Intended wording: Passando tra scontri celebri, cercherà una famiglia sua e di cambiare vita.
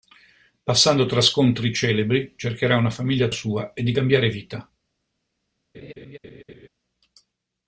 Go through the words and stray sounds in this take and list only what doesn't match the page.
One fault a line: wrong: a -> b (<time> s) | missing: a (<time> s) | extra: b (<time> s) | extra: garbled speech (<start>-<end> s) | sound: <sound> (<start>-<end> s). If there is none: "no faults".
sound: laugh (5.7-6.7 s)